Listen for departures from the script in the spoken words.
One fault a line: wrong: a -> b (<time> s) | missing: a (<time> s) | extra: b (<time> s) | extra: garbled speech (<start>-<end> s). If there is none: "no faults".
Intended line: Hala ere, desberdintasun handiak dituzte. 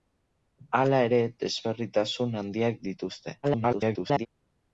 extra: garbled speech (3.4-4.3 s)